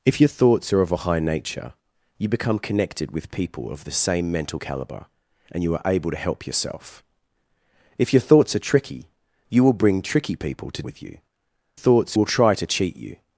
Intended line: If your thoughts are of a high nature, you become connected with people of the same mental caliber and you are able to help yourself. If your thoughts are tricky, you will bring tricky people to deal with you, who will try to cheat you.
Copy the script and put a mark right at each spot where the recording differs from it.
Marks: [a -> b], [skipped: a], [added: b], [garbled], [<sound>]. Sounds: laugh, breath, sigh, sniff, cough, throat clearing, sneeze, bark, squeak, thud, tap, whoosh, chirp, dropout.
If your thoughts are of a high nature, you become connected with people of the same mental caliber and you are able to help yourself. If your thoughts are tricky, you will bring tricky people to [skipped: deal] with you, [who -> thoughts] will try to cheat you.